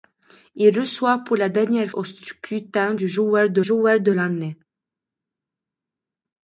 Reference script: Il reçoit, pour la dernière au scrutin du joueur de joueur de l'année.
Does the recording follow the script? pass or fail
pass